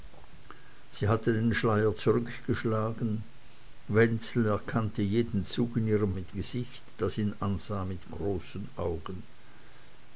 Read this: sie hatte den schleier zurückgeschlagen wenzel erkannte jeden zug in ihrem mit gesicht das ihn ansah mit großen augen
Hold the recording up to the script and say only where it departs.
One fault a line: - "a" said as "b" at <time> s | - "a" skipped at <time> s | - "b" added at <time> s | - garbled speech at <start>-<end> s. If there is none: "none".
none